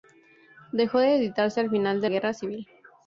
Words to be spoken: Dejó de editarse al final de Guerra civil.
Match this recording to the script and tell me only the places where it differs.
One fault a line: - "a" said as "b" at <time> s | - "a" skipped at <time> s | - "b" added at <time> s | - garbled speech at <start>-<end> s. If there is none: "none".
none